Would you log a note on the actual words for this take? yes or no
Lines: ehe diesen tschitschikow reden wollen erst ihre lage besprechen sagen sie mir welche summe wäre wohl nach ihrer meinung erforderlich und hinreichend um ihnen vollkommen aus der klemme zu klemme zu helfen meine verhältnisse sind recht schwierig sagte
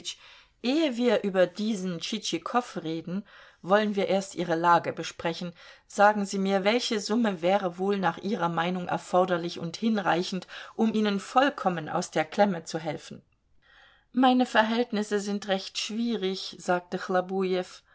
yes